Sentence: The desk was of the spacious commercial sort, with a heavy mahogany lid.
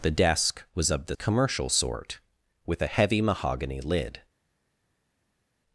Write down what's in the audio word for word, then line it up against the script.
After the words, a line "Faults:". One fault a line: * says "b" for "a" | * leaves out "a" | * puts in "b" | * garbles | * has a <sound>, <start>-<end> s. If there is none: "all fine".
The desk was of the commercial sort, with a heavy mahogany lid.
Faults:
* leaves out "spacious"